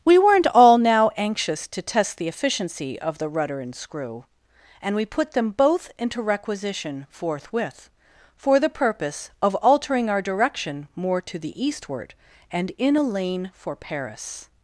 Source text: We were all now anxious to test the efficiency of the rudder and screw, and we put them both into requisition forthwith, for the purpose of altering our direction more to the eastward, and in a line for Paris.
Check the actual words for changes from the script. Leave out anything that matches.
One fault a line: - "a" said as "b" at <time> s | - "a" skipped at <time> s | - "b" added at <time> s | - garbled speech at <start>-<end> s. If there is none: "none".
- "were" said as "weren't" at 0.2 s
- "line" said as "lane" at 13.0 s